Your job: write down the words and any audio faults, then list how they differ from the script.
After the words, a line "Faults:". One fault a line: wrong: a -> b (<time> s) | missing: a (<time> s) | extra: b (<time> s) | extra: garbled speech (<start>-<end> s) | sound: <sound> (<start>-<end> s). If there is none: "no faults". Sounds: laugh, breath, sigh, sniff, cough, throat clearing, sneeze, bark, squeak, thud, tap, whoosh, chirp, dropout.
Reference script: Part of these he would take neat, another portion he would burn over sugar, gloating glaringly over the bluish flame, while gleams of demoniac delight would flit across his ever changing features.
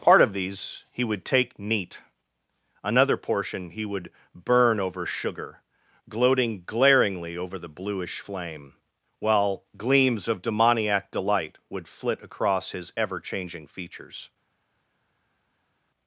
Part of these he would take neat, another portion he would burn over sugar, gloating glaringly over the bluish flame, while gleams of demoniac delight would flit across his ever changing features.
Faults:
no faults